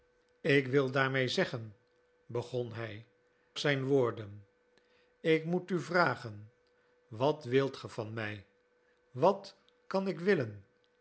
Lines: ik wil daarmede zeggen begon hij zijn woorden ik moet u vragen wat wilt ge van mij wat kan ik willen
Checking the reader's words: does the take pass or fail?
pass